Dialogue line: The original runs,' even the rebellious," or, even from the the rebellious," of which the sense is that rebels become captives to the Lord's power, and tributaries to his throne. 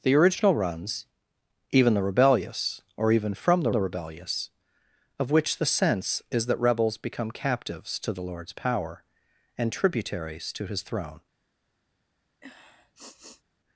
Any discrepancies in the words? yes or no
no